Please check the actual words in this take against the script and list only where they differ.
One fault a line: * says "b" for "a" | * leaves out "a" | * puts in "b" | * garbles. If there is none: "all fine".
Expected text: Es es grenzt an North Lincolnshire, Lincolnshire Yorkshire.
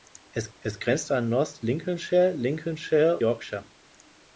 all fine